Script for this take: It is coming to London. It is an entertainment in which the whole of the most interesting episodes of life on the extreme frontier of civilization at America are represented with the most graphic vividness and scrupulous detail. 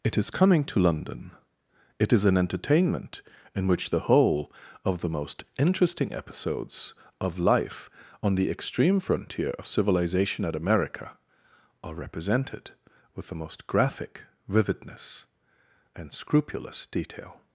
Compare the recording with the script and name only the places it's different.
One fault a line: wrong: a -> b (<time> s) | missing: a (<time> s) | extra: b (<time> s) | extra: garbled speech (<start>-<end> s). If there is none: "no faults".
no faults